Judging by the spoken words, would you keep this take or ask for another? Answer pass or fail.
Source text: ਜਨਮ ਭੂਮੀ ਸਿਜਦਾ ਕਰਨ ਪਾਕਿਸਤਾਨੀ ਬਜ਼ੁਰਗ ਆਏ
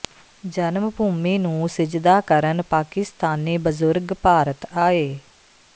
fail